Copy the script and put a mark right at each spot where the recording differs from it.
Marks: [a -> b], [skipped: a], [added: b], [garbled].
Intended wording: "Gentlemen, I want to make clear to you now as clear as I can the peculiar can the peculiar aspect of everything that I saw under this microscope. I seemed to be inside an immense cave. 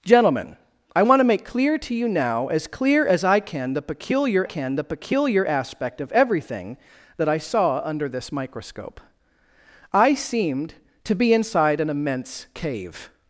"Gentlemen, I want to make clear to you now as clear as I can the peculiar can the peculiar aspect of everything that I saw under this microscope. I seemed to be inside an immense cave.